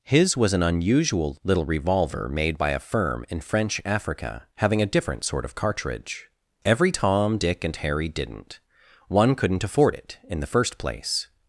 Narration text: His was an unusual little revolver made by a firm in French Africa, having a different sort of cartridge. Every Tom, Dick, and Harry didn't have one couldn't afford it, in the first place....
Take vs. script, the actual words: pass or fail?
fail